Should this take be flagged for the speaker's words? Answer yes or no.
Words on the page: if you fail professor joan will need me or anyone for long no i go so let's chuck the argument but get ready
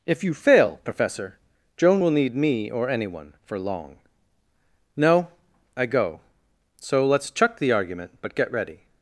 no